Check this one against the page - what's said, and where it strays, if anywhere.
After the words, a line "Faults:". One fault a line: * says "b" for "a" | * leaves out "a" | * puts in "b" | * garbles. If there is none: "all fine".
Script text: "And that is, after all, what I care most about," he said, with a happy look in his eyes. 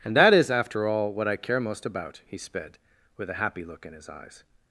"And that is, after all, what I care most about," he sped, with a happy look in his eyes.
Faults:
* says "sped" for "said"